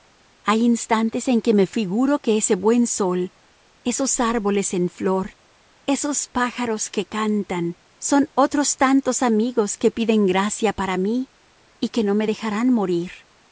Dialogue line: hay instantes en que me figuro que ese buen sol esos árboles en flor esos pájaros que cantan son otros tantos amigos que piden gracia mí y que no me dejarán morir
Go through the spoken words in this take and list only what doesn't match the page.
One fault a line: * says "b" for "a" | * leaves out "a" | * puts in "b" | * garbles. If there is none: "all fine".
* puts in "para"